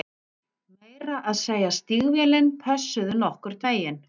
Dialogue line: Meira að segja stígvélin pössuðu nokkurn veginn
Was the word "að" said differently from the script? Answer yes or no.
no